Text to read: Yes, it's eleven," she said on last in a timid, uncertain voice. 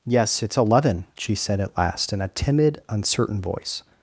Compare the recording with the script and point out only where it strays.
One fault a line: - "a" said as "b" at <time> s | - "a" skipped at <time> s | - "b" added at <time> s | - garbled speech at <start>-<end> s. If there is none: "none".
- "on" said as "at" at 1.6 s